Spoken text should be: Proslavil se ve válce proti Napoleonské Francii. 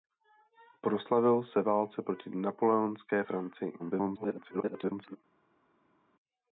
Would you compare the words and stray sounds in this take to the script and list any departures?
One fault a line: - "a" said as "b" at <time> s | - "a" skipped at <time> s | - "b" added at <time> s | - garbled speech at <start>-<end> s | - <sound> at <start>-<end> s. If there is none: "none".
- "ve" skipped at 1.6 s
- garbled speech at 3.8-5.2 s